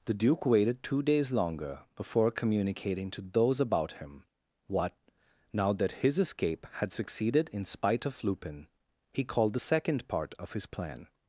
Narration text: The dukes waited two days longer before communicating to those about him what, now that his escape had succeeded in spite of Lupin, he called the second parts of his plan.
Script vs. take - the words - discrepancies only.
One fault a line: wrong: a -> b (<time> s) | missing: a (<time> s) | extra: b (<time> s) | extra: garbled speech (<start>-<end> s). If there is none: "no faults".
wrong: dukes -> duke (0.1 s)
wrong: parts -> part (10.1 s)